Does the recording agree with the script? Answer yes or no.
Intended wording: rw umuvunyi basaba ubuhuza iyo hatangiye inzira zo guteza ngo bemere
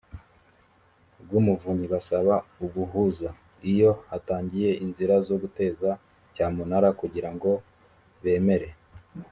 no